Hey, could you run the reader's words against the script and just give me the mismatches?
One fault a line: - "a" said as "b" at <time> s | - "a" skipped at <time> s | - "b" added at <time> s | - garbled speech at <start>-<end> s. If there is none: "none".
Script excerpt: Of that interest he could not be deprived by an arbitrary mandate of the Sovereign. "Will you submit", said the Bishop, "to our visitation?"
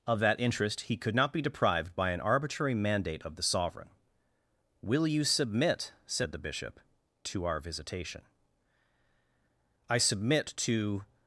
- "I submit to" added at 9.9 s